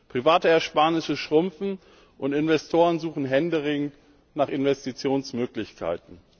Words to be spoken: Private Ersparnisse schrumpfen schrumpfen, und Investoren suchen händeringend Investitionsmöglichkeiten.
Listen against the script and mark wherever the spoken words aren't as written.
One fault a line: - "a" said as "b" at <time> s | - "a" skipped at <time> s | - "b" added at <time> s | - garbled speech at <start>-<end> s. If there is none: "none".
- "schrumpfen" skipped at 1.8 s
- "nach" added at 4.3 s